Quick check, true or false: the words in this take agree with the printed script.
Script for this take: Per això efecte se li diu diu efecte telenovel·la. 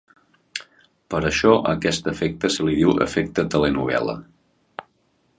false